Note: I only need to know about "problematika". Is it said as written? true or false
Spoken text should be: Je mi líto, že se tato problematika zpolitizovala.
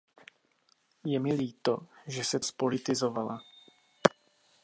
false